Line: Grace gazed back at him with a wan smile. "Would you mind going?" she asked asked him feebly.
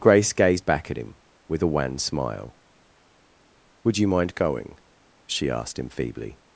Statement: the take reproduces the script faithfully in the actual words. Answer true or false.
false